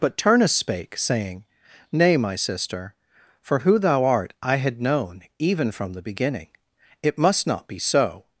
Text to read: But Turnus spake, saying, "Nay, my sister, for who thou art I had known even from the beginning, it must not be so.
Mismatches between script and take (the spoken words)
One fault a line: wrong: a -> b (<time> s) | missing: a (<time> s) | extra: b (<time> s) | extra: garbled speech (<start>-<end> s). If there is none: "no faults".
no faults